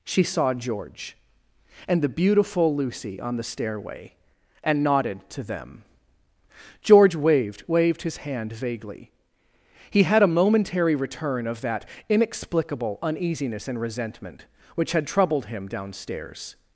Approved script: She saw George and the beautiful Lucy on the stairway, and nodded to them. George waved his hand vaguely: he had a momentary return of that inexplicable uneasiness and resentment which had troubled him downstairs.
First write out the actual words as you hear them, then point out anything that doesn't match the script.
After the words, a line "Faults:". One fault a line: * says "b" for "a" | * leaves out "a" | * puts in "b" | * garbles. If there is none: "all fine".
She saw George and the beautiful Lucy on the stairway, and nodded to them. George waved waved his hand vaguely: he had a momentary return of that inexplicable uneasiness and resentment which had troubled him downstairs.
Faults:
* puts in "waved"